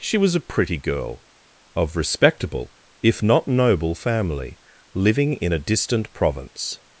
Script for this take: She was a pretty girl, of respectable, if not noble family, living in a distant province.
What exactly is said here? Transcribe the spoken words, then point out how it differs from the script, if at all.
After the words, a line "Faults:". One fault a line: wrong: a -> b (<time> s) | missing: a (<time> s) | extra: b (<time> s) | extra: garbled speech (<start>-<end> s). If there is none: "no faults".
She was a pretty girl, of respectable, if not noble family, living in a distant province.
Faults:
no faults